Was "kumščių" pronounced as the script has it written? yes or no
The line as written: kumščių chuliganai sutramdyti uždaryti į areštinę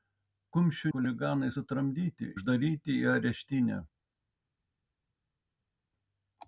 yes